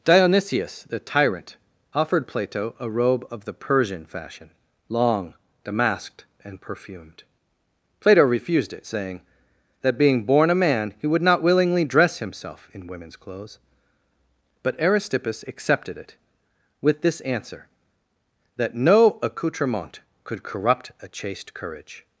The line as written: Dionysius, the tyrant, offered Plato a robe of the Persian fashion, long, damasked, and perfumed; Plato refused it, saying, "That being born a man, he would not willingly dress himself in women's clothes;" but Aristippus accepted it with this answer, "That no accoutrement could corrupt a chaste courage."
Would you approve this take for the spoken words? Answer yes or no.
yes